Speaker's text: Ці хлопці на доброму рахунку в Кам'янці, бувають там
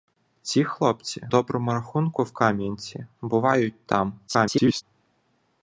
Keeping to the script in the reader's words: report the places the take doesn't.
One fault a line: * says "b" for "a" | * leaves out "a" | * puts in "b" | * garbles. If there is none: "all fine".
* leaves out "на"
* garbles